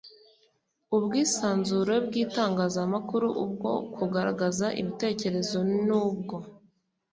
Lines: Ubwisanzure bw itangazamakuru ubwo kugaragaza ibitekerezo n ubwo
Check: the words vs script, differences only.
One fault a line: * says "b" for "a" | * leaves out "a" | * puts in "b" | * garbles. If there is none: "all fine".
all fine